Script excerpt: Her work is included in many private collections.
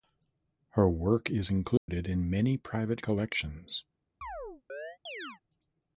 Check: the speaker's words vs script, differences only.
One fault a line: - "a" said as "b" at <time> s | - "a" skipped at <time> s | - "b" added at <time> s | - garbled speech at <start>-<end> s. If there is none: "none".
none